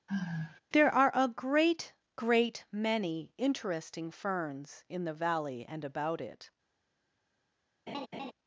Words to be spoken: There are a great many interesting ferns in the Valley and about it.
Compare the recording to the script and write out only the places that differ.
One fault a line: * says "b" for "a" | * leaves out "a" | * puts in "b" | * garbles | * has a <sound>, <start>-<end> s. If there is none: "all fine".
* has a sigh, 0.1-0.6 s
* puts in "great"
* has a laugh, 7.9-8.3 s